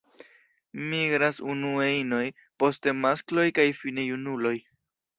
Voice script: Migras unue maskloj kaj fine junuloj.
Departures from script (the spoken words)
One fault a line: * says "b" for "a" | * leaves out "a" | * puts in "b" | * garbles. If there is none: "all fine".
* puts in "inoj poste"